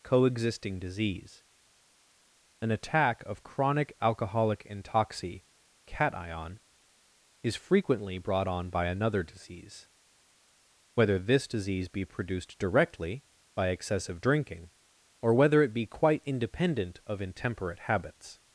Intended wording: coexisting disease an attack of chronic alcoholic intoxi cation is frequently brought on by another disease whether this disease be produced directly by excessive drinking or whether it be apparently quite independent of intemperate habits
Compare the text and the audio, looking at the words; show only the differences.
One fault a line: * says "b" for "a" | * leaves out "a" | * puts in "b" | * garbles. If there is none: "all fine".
* leaves out "apparently"